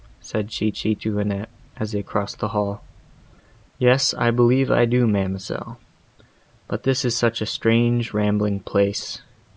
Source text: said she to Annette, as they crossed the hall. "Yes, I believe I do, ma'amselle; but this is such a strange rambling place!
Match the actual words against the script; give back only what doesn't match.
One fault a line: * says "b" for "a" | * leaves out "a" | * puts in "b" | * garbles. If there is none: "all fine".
* puts in "she"